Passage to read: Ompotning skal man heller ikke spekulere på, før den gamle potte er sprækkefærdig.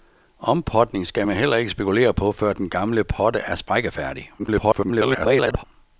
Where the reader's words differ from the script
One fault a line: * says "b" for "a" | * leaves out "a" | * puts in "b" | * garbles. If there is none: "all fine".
* garbles